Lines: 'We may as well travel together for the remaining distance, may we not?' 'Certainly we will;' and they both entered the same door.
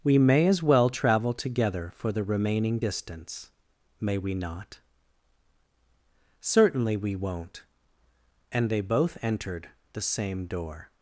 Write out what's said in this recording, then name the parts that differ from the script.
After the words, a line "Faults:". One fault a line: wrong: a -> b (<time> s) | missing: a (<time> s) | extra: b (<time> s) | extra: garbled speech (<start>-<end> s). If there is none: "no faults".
'We may as well travel together for the remaining distance, may we not?' 'Certainly we won't;' and they both entered the same door.
Faults:
wrong: will -> won't (7.2 s)